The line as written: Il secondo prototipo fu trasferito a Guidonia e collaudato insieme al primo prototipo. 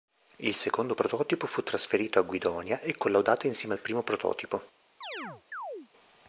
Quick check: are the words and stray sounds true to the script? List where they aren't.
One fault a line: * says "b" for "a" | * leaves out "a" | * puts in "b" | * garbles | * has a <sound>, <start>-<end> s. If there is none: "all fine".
* has a chirp, 5.0-5.9 s